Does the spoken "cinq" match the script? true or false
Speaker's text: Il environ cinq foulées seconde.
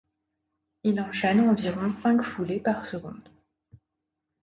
true